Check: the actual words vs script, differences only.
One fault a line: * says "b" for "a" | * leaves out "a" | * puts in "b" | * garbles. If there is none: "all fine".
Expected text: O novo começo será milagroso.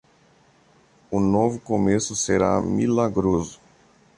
all fine